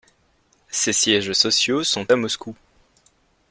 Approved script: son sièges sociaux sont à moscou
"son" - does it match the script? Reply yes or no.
no